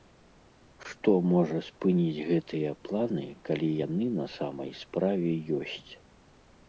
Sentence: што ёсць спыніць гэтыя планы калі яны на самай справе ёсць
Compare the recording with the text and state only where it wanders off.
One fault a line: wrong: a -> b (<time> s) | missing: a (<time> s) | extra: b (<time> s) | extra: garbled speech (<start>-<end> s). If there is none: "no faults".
wrong: ёсць -> можа (1.3 s)